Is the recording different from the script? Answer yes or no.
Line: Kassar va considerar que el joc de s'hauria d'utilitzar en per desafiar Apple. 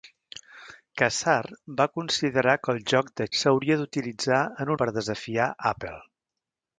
no